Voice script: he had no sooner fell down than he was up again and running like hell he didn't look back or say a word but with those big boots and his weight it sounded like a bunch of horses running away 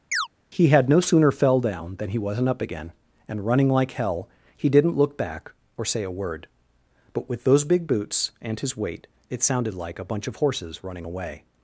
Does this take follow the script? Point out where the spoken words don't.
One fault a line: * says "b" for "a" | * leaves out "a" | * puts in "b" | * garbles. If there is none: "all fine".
* says "wasn't" for "was"